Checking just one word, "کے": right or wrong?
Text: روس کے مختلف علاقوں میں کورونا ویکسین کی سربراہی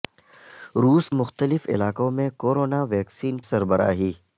wrong